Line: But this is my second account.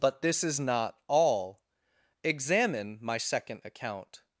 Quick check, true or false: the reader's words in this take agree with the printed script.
false